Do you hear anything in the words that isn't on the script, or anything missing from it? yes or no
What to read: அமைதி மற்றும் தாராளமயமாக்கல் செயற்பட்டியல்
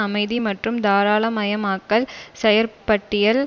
no